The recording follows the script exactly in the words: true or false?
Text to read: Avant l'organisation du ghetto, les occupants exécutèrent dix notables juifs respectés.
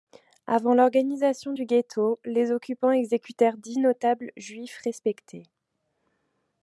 true